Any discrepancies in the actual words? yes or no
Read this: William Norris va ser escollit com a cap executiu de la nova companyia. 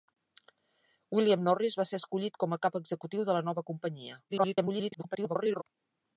yes